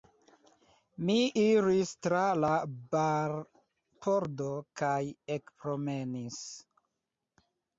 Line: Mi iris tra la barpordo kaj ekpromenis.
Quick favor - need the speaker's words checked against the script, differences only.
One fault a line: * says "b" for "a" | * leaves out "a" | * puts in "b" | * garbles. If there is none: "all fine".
all fine